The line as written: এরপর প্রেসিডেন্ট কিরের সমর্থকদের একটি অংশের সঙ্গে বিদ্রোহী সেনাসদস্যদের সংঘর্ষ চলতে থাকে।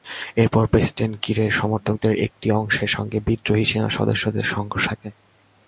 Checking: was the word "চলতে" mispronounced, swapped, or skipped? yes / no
yes